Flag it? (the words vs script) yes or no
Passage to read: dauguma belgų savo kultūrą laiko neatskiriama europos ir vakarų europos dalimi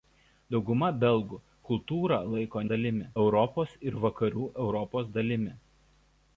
yes